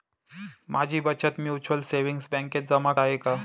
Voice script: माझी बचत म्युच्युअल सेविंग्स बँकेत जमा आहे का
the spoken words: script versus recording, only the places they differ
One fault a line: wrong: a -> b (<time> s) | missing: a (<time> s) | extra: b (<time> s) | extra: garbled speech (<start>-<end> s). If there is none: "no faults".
no faults